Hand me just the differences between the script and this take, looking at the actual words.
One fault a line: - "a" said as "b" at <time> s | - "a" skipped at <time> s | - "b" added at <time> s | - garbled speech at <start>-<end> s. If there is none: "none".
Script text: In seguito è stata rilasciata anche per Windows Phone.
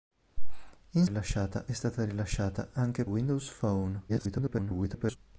- "seguito" said as "rilasciata" at 1.0 s
- "per" skipped at 3.0 s
- garbled speech at 4.1-5.2 s